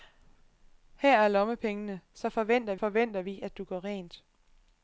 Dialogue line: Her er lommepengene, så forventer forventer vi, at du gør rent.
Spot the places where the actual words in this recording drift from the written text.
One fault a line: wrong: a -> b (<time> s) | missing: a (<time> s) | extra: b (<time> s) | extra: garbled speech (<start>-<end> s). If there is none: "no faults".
no faults